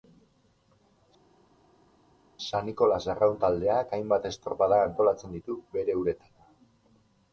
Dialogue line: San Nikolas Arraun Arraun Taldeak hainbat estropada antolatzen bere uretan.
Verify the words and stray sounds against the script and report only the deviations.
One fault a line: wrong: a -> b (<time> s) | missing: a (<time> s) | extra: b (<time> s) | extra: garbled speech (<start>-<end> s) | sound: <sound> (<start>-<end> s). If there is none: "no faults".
missing: Arraun (3.4 s)
extra: ditu (5.4 s)